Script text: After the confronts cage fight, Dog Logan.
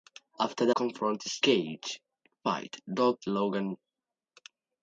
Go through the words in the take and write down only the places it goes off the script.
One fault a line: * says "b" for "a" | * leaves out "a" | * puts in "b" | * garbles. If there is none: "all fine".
all fine